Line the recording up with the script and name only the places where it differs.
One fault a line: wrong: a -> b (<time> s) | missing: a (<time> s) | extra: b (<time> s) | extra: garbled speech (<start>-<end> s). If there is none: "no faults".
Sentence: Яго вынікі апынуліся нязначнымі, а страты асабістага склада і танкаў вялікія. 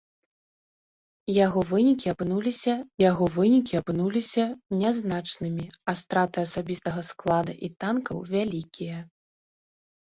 extra: яго вынікі апынуліся (3.1 s)